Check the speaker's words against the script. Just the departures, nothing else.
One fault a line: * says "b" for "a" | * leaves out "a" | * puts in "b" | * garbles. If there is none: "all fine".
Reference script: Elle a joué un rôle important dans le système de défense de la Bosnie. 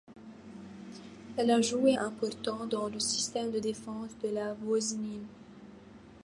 * leaves out "un rôle"